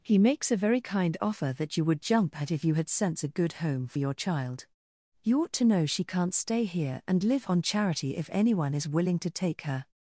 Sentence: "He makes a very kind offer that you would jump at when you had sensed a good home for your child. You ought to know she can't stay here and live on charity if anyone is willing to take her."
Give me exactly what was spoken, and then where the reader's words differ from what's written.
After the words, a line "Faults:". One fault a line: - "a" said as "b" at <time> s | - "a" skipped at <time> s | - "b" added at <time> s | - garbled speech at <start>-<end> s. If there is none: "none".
"He makes a very kind offer that you would jump at if you had sense a good home for your child. You ought to know she can't stay here and live on charity if anyone is willing to take her."
Faults:
- "when" said as "if" at 2.5 s
- "sensed" said as "sense" at 2.9 s